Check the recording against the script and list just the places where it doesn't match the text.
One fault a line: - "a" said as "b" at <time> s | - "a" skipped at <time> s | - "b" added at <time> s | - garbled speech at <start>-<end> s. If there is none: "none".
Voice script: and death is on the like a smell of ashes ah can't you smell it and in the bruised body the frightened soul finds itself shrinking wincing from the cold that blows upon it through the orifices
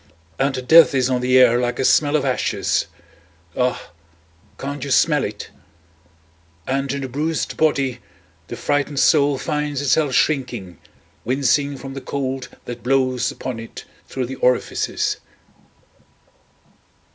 - "air" added at 1.4 s